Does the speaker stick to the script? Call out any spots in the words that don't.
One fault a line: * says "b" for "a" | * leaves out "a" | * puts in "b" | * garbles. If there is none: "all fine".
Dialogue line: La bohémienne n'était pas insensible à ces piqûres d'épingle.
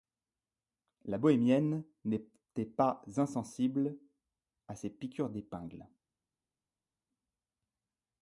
all fine